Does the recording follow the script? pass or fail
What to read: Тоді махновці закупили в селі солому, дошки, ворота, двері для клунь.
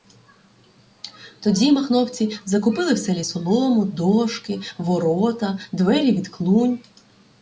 fail